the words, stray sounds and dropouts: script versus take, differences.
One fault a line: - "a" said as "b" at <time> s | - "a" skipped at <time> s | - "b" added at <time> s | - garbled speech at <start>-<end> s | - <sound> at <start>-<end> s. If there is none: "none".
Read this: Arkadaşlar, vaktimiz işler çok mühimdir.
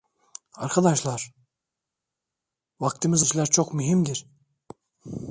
none